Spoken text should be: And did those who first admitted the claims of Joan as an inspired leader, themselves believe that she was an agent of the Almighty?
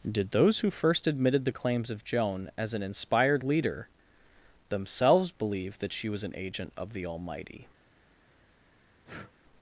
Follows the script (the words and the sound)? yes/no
no